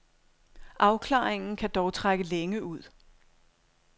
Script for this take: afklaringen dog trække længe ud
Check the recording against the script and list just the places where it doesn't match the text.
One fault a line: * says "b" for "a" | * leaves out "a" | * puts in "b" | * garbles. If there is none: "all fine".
* puts in "kan"